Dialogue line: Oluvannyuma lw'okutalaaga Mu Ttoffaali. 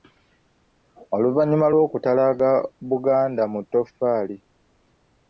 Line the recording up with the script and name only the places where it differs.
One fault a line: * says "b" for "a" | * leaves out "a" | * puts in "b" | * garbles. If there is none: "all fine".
* puts in "Buganda"